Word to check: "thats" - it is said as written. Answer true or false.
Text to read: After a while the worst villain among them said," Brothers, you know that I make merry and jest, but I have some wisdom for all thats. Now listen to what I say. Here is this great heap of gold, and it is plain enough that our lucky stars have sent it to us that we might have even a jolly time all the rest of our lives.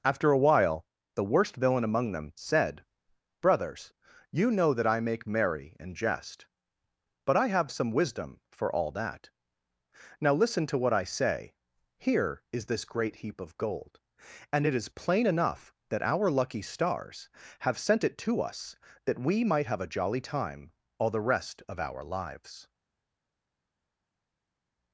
false